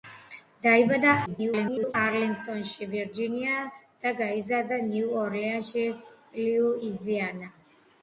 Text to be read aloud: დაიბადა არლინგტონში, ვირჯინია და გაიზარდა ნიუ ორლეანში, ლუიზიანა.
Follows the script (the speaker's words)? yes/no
no